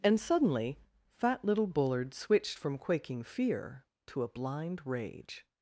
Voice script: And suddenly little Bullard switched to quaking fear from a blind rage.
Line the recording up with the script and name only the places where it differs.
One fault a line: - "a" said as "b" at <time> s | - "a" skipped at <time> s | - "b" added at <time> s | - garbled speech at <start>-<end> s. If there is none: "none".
- "fat" added at 1.1 s
- "to" said as "from" at 2.6 s
- "from" said as "to" at 4.1 s